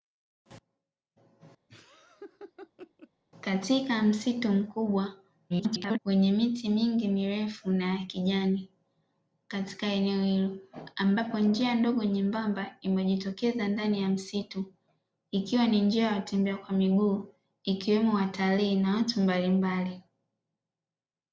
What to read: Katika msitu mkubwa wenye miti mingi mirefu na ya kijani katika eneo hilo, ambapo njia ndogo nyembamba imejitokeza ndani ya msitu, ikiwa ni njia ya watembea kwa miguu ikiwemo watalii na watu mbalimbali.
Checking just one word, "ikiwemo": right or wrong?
right